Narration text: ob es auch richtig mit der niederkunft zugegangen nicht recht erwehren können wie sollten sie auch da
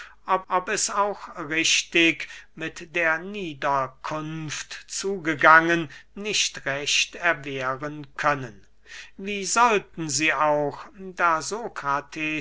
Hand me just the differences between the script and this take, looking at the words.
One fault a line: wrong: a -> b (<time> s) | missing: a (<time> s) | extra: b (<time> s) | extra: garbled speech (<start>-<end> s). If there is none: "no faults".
extra: ob (0.5 s)